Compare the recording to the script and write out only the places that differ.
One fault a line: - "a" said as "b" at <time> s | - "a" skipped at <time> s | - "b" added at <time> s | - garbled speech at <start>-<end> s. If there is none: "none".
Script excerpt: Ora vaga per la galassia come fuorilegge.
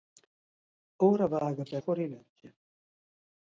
- "la galassia come" skipped at 1.8 s